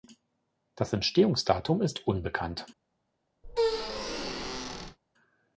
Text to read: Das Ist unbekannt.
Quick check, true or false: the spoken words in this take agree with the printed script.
false